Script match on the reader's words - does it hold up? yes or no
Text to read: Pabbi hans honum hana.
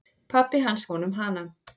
yes